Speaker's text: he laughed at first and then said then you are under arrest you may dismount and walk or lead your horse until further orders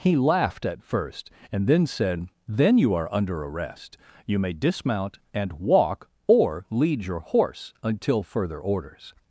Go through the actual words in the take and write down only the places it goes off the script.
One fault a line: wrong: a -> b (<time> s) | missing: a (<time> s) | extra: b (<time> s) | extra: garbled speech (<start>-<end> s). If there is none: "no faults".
no faults